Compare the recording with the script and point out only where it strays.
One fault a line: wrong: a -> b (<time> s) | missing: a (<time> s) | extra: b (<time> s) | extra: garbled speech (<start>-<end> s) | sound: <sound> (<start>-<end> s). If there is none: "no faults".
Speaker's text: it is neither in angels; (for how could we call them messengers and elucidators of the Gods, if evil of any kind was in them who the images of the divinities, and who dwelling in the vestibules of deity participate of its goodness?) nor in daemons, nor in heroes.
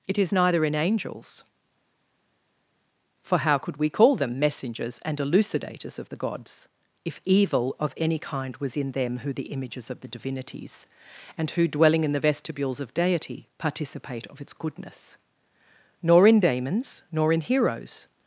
no faults